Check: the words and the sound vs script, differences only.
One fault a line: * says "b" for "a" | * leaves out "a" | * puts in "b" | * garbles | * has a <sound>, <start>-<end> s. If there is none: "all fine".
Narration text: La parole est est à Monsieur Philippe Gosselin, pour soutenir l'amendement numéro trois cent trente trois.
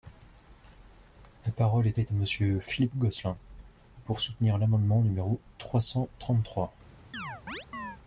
* has a chirp, 7.1-8.0 s